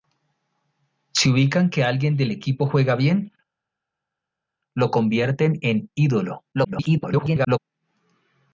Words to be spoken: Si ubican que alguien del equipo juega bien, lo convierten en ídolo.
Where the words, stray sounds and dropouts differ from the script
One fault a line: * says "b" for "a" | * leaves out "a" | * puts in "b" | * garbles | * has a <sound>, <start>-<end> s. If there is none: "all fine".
* garbles